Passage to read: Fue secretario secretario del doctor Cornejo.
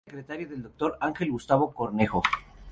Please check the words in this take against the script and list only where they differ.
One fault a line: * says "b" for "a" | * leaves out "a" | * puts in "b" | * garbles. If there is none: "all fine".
* leaves out "secretario"
* puts in "Ángel Gustavo"